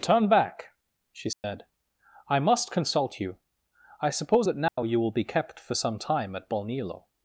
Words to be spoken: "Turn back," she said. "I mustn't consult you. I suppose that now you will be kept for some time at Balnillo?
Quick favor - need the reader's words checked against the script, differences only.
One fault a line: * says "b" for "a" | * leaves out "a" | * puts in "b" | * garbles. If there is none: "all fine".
* says "must" for "mustn't"